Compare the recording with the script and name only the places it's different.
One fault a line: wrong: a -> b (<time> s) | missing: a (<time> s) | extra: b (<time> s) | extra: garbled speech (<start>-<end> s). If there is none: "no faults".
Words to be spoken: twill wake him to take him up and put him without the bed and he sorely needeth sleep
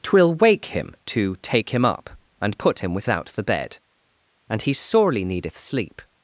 no faults